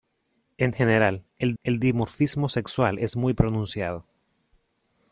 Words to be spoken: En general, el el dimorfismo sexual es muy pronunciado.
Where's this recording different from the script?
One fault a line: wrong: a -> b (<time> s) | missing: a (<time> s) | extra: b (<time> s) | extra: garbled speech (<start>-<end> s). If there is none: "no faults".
no faults